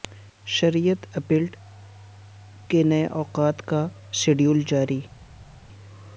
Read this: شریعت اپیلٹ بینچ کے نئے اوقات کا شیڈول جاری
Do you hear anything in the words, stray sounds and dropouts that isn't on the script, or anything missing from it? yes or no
yes